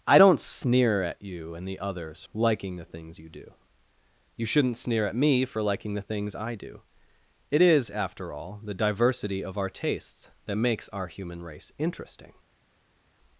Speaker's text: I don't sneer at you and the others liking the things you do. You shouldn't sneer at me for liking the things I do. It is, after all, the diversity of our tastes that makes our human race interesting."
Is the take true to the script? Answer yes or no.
yes